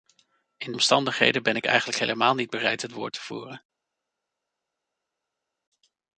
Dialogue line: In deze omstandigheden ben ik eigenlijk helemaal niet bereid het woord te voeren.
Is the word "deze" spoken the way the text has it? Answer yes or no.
no